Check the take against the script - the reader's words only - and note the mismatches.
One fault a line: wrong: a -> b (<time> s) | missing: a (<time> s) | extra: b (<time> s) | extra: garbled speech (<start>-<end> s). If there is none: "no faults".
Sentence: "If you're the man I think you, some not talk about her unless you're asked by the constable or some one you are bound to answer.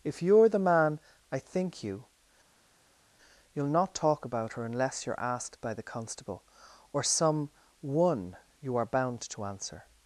wrong: some -> you'll (3.5 s)